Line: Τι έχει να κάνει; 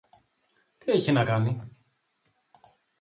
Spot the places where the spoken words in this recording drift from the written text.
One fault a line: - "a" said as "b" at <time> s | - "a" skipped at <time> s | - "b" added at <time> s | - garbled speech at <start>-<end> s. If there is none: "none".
none